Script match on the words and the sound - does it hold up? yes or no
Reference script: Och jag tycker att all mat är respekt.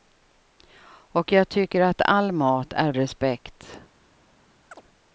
no